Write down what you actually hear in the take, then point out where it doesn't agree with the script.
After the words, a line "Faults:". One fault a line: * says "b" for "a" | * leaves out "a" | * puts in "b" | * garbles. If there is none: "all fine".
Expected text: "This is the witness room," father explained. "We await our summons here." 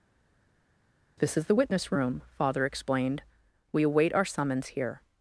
"This is the witness room," father explained. "We await our summons here."
Faults:
all fine